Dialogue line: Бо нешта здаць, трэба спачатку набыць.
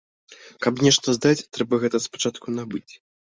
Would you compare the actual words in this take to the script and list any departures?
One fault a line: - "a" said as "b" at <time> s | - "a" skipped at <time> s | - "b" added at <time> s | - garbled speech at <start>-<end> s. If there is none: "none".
- "Бо" said as "Каб" at 0.7 s
- "гэта" added at 1.9 s